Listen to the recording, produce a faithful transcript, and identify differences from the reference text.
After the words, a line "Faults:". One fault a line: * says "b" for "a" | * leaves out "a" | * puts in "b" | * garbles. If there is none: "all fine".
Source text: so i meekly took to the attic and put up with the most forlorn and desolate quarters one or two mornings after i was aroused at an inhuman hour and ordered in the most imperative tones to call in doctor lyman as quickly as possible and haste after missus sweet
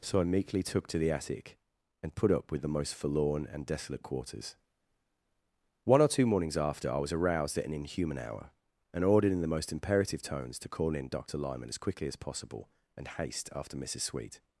so i meekly took to the attic and put up with the most forlorn and desolate quarters one or two mornings after i was aroused at an inhuman hour and ordered in the most imperative tones to call in doctor lyman as quickly as possible and haste after missus sweet
Faults:
all fine